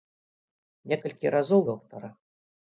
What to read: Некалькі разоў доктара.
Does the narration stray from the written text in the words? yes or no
no